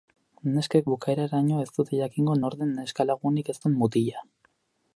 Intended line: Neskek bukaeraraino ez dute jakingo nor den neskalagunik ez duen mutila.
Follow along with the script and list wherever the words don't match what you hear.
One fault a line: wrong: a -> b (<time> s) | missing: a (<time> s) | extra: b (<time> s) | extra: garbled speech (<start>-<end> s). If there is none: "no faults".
no faults